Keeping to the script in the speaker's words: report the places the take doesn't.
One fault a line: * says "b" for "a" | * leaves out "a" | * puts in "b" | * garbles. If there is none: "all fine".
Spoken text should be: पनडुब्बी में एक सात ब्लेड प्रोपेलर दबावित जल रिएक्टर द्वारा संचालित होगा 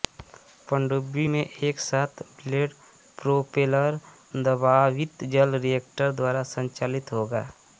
all fine